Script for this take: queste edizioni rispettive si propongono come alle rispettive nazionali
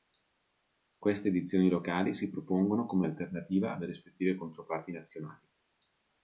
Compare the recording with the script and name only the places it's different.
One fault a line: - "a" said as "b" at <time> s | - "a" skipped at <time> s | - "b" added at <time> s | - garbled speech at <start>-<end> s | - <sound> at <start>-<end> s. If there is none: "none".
- "rispettive" said as "locali" at 1.7 s
- "alternativa" added at 3.0 s
- "controparti" added at 4.4 s